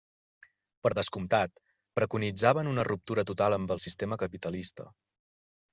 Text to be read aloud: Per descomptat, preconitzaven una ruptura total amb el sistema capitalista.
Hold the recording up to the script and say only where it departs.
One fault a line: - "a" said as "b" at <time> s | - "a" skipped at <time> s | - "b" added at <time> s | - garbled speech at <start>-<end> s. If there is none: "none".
none